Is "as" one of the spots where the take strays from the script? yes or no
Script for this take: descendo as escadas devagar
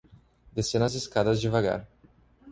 no